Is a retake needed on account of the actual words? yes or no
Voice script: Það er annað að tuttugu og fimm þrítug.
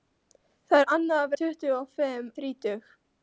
no